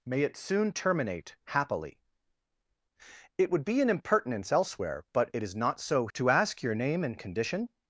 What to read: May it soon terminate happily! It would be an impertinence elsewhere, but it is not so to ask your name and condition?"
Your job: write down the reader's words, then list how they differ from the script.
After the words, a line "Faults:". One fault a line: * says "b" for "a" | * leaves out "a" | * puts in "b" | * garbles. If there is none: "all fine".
May it soon terminate happily! It would be an impertinence elsewhere, but it is not so to ask your name and condition?"
Faults:
all fine